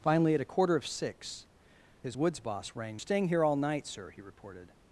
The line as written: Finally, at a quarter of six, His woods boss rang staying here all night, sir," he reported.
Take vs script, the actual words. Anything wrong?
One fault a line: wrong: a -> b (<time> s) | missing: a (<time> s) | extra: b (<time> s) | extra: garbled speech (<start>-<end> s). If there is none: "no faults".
no faults